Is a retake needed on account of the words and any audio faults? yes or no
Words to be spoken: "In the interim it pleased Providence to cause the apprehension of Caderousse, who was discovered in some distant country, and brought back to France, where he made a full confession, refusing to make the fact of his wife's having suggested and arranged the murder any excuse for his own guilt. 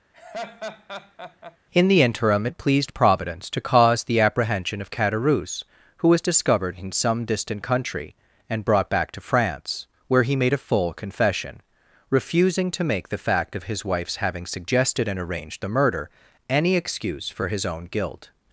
yes